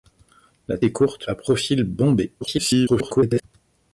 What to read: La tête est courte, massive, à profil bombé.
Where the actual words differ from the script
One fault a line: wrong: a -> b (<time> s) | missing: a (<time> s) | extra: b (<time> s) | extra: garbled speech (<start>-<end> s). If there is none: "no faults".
missing: tête (0.8 s)
missing: massive (1.3 s)
extra: garbled speech (2.4-3.4 s)